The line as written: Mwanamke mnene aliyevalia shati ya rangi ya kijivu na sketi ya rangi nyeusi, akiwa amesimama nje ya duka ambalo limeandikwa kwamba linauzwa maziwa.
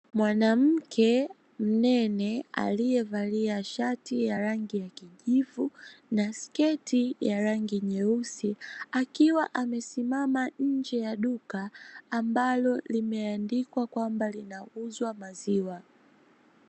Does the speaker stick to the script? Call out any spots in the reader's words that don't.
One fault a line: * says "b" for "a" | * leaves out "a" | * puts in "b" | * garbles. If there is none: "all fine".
all fine